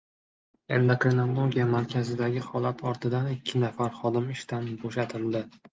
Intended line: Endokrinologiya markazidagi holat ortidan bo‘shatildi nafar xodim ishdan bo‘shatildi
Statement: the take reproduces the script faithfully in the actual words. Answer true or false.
false